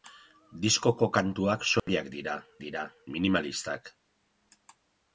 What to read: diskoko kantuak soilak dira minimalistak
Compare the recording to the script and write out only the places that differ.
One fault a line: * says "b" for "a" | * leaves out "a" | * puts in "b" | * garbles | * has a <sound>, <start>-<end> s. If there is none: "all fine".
* has a dropout, 1.8-1.9 s
* puts in "dira"